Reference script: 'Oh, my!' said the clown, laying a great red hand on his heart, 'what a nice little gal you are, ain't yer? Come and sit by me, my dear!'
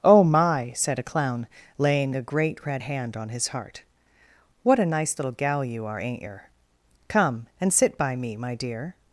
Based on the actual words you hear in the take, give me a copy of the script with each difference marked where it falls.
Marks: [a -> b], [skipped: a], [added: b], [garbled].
'Oh, my!' said [the -> a] clown, laying a great red hand on his heart, 'what a nice little gal you are, ain't yer? Come and sit by me, my dear!'